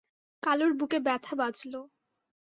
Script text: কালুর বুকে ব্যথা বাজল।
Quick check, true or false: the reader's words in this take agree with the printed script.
true